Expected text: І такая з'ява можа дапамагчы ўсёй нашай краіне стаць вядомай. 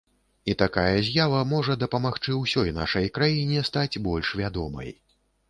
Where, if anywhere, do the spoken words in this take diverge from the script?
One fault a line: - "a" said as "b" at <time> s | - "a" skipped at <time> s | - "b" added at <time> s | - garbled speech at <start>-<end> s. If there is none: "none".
- "больш" added at 4.1 s